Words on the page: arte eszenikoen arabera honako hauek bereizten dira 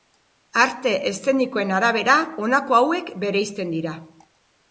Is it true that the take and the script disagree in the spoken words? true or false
false